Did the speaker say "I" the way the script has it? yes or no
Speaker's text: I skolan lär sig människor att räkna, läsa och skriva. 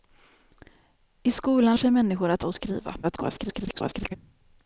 yes